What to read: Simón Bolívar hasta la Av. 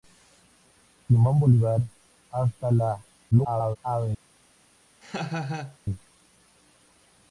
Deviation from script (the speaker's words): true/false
true